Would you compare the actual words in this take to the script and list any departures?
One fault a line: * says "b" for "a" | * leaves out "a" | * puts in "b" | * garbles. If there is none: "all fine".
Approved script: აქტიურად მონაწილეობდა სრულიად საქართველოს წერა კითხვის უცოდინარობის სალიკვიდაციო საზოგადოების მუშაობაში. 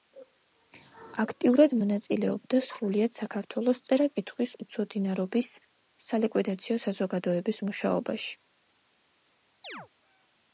all fine